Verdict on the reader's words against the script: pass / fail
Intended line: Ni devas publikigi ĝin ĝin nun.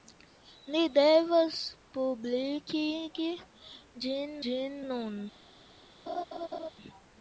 pass